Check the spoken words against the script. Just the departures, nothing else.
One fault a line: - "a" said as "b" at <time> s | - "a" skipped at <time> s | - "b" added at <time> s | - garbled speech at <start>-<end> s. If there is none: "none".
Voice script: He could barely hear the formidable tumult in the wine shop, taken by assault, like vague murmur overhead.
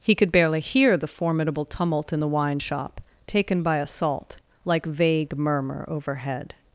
none